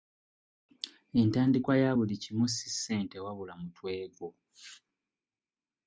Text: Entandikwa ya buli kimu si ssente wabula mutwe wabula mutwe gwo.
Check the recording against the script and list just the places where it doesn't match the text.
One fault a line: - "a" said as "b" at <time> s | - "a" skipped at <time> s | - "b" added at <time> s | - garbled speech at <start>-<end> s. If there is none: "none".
- "wabula mutwe" skipped at 3.9 s